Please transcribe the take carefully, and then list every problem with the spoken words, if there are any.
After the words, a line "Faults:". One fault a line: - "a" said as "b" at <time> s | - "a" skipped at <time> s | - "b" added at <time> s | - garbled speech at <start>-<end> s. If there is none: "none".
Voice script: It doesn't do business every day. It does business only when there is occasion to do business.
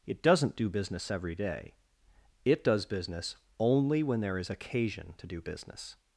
It doesn't do business every day. It does business only when there is occasion to do business.
Faults:
none